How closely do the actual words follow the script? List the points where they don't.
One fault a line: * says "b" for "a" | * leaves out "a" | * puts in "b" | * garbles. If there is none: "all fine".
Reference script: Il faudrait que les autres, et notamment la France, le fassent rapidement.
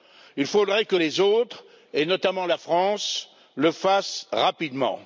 all fine